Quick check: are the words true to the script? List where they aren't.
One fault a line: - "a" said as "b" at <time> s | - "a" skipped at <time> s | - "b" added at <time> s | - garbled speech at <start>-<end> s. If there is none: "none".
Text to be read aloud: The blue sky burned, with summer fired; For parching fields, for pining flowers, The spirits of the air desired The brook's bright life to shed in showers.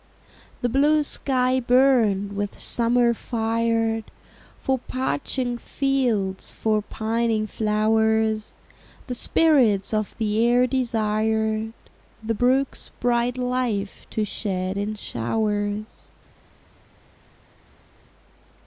none